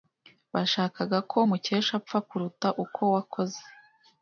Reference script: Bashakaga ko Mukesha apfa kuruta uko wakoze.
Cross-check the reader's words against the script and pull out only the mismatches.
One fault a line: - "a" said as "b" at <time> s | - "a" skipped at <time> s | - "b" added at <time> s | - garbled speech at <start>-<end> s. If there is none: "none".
none